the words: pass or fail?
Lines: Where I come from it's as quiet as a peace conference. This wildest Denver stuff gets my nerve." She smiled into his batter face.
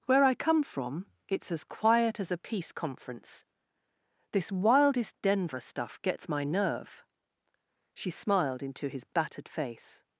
fail